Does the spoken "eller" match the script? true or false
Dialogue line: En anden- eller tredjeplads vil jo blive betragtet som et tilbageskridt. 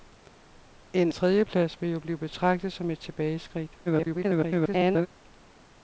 false